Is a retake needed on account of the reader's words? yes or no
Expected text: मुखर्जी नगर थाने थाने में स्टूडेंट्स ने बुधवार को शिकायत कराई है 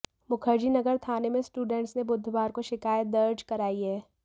yes